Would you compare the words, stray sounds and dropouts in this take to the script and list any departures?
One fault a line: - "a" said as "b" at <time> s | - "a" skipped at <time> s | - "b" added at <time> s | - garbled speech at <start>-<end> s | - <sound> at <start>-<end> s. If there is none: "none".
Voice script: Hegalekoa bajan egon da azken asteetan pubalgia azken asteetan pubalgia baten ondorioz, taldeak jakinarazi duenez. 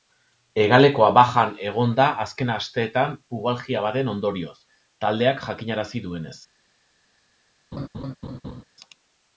- "azken asteetan pubalgia" skipped at 3.9 s
- laugh at 7.7-8.6 s